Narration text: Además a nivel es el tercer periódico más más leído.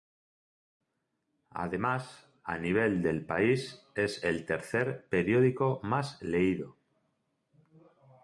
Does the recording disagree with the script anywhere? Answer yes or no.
yes